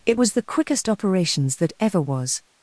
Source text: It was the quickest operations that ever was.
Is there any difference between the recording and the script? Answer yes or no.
no